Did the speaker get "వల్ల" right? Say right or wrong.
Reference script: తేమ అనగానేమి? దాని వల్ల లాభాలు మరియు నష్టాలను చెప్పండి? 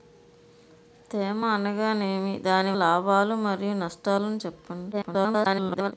wrong